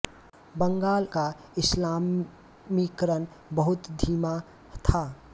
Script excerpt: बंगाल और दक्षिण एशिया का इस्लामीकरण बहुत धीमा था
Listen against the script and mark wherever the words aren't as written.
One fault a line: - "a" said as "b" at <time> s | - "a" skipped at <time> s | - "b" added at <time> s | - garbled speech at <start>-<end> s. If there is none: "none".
- "और दक्षिण एशिया" skipped at 1.1 s